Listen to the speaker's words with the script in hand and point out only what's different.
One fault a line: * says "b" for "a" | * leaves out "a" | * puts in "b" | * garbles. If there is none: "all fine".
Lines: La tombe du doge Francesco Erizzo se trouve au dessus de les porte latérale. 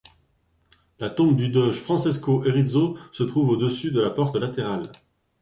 * says "la" for "les"